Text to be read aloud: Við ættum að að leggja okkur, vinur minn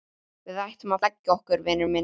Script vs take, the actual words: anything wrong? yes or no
no